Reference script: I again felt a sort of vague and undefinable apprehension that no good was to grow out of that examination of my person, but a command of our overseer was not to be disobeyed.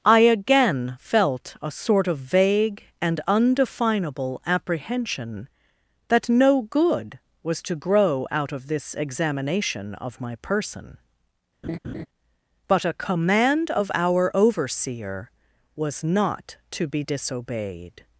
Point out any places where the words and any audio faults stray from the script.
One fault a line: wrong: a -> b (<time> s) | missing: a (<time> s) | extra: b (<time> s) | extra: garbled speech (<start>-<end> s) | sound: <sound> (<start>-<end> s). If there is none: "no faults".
wrong: that -> this (8.7 s)
sound: laugh (11.6-12.1 s)